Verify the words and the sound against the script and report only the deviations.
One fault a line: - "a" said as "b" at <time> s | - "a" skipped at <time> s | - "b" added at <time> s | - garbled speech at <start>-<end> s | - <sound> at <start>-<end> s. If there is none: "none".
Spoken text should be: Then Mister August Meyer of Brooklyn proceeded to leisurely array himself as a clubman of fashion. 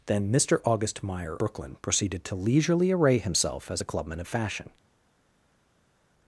- "of" skipped at 1.4 s